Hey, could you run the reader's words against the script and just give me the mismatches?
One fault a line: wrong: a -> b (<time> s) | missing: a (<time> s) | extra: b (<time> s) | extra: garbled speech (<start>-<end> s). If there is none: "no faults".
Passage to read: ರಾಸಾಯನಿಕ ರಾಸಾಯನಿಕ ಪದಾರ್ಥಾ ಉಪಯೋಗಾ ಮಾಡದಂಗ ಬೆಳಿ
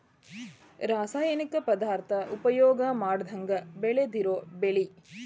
missing: ರಾಸಾಯನಿಕ (1.6 s)
extra: ಬೆಳದಿರು (3.8 s)